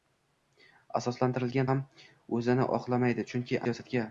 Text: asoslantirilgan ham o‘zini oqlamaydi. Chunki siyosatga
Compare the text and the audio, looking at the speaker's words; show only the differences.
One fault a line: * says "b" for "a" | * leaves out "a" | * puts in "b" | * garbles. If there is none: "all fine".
all fine